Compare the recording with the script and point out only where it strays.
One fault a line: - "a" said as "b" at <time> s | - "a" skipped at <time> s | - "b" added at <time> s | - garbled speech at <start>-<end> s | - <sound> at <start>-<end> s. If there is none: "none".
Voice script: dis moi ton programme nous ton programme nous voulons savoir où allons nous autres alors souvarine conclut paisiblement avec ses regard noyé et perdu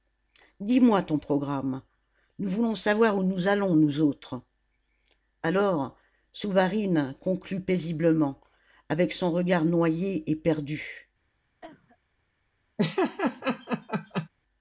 - "ton programme nous" skipped at 2.5 s
- "nous" added at 3.2 s
- "ses" said as "son" at 9.1 s
- cough at 11.6-12.0 s
- laugh at 12.8-14.3 s